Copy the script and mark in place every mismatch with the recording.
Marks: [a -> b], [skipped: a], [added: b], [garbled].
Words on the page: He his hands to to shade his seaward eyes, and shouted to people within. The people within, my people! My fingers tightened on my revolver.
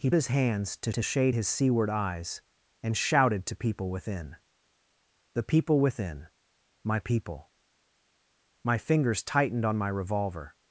He his hands to to shade his seaward eyes, and shouted to people within. The people within, my people! My fingers tightened on my revolver.